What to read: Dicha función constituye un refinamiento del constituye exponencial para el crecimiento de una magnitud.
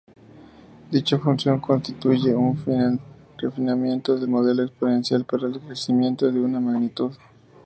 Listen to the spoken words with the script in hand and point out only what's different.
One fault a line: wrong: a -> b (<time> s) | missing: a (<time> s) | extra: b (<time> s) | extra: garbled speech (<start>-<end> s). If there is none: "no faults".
wrong: constituye -> modelo (4.3 s)